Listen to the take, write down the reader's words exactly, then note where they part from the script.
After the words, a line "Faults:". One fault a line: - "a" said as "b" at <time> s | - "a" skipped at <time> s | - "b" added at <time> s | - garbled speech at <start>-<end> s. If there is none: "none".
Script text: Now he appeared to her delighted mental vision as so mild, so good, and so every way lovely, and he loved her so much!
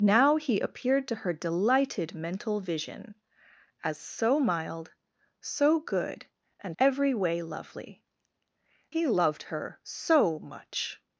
Now he appeared to her delighted mental vision as so mild, so good, and every way lovely, he loved her so much!
Faults:
- "so" skipped at 6.8 s
- "and" skipped at 8.0 s